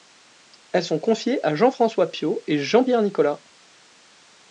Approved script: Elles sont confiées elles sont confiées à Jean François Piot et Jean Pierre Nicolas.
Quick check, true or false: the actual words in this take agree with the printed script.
false